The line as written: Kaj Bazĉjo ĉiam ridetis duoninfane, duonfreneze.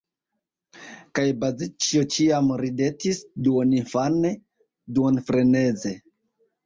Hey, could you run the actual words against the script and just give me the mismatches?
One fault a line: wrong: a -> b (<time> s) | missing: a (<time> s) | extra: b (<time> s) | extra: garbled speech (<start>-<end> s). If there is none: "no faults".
no faults